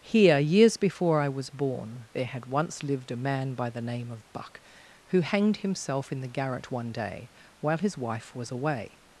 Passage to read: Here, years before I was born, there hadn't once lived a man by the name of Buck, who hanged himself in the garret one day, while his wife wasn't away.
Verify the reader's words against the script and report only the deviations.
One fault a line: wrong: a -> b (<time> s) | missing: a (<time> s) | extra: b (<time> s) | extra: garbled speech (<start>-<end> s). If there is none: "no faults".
wrong: hadn't -> had (2.2 s)
wrong: wasn't -> was (8.3 s)